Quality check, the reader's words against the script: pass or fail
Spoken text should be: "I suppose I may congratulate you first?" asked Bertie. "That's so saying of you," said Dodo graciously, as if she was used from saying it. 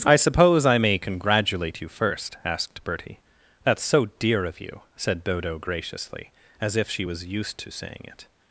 fail